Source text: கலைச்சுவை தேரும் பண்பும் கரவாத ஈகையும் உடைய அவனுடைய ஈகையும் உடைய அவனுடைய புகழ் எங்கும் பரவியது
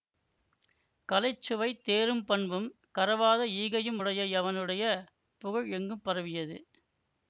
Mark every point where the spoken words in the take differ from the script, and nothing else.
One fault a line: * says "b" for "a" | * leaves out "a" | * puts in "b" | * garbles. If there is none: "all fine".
* leaves out "ஈகையும் உடைய அவனுடைய"